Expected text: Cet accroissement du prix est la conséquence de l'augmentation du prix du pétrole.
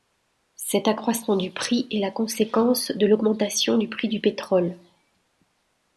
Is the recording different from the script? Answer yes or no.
no